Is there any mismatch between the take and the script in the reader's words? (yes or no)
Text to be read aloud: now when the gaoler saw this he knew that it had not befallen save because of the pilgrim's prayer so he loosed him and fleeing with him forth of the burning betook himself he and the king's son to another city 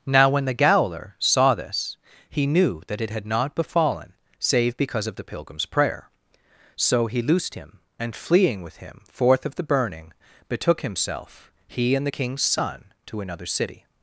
no